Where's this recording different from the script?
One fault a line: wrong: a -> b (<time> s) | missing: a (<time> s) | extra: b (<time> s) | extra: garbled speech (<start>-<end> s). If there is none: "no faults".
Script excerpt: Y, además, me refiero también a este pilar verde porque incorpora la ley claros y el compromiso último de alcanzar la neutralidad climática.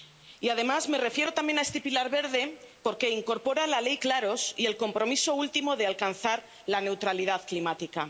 no faults